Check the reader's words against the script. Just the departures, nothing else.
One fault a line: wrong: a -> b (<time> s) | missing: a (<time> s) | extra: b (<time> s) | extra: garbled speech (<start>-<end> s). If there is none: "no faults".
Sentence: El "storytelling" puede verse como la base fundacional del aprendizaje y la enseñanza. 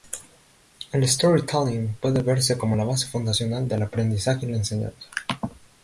no faults